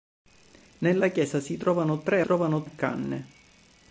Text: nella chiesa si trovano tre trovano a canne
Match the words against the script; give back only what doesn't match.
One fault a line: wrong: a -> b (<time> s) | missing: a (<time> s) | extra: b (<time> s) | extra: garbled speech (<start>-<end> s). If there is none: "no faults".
no faults